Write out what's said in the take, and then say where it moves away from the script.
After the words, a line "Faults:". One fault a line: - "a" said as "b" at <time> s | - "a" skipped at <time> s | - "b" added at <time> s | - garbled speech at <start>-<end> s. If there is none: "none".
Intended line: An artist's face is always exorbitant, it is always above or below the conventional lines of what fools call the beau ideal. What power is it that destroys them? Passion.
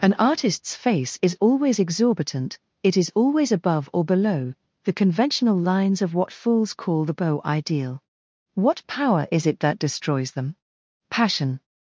An artist's face is always exorbitant, it is always above or below the conventional lines of what fools call the beau ideal. What power is it that destroys them? Passion.
Faults:
none